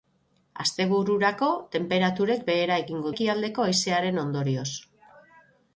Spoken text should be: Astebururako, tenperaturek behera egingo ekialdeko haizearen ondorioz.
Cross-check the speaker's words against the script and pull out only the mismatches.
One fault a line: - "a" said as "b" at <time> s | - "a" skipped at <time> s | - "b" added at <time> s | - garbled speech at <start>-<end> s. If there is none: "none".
none